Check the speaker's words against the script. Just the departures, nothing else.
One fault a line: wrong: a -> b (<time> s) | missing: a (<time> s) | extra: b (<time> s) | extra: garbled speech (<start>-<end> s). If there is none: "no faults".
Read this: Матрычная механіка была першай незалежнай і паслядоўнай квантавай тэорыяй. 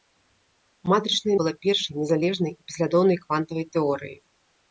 missing: механіка (1.4 s)